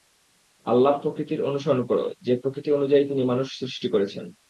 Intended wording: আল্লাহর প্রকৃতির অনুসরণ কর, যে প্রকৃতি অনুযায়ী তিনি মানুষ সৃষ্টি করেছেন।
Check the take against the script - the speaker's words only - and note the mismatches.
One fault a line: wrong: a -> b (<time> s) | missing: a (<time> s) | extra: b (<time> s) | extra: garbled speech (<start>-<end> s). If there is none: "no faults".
no faults